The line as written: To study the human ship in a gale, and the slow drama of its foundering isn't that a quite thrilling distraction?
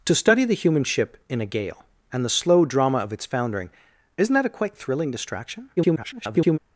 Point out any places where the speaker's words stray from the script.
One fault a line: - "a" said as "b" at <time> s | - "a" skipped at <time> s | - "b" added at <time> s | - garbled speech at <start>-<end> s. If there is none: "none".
- garbled speech at 5.8-6.6 s